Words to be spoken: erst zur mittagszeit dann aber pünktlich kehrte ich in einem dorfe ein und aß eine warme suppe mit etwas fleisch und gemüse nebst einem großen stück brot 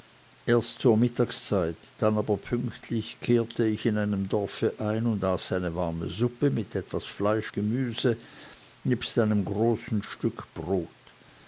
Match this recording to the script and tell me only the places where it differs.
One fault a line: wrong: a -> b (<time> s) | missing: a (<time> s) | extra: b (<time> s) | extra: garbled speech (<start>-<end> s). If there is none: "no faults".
missing: und (7.5 s)